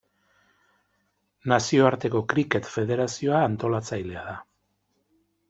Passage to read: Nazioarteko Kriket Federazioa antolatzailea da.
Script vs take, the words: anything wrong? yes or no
no